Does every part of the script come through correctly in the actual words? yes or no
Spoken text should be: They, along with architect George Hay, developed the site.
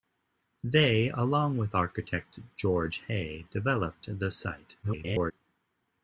no